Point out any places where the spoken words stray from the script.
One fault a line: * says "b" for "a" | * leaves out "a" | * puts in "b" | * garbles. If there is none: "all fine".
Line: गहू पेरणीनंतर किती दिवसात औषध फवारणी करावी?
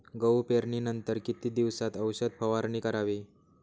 all fine